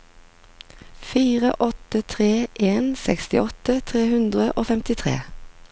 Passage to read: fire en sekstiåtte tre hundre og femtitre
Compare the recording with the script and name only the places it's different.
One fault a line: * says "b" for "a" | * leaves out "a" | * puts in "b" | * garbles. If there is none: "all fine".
* puts in "åtte tre"